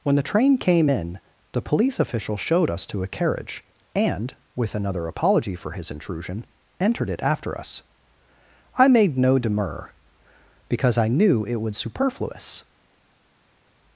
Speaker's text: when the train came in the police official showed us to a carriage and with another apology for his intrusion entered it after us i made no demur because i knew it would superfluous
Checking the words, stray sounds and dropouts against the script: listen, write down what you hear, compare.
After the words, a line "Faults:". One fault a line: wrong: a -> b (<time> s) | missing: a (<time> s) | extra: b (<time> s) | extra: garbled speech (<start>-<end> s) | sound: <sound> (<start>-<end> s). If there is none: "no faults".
when the train came in the police official showed us to a carriage and with another apology for his intrusion entered it after us i made no demur because i knew it would superfluous
Faults:
no faults